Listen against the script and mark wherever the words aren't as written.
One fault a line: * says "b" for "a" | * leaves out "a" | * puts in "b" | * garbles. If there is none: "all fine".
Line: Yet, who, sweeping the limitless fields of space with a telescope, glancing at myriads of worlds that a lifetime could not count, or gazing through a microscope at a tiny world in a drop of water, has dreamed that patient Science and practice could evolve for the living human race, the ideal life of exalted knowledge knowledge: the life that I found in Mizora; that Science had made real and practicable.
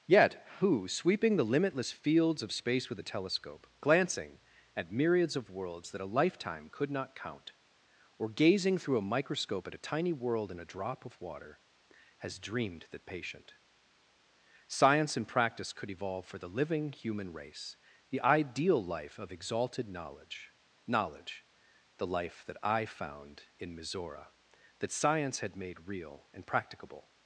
all fine